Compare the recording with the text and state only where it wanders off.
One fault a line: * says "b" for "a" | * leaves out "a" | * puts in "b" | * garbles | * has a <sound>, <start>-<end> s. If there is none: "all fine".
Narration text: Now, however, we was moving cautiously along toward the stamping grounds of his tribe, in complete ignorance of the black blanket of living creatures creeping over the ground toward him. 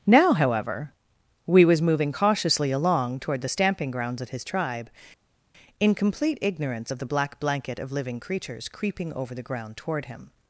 all fine